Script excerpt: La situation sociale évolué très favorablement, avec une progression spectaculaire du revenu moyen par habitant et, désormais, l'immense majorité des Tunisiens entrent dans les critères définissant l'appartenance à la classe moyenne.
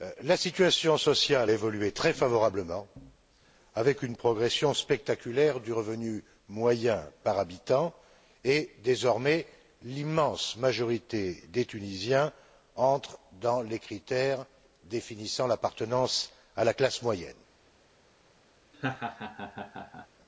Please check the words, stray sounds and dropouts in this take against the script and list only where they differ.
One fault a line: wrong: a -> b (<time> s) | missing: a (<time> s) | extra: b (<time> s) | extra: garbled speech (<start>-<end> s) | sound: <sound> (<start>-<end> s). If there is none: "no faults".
sound: laugh (18.7-20.1 s)